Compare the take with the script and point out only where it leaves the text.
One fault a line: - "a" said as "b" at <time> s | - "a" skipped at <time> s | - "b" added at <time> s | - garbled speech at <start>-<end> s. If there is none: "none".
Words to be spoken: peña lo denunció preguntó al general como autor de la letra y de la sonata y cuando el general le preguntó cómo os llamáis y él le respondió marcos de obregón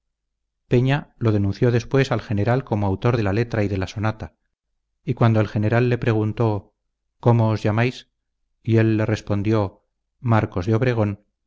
- "preguntó" said as "después" at 1.7 s